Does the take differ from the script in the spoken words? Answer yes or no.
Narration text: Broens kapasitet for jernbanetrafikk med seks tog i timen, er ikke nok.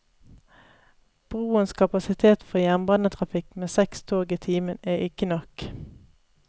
no